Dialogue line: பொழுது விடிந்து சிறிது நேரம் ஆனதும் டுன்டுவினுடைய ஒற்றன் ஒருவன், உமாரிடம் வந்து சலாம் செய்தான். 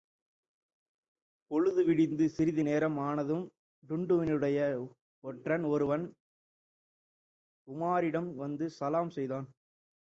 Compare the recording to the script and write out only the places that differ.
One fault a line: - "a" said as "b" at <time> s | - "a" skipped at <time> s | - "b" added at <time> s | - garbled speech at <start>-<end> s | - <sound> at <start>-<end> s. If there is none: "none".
none